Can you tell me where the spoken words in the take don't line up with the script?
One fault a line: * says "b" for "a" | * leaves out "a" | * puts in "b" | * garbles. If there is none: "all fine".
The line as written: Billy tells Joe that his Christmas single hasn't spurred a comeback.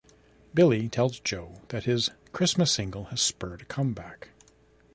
* says "has" for "hasn't"